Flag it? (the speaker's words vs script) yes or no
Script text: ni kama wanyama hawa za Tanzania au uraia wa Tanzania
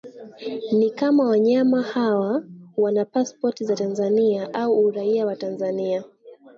yes